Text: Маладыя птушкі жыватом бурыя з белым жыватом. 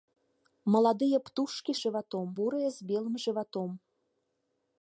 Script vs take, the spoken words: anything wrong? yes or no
no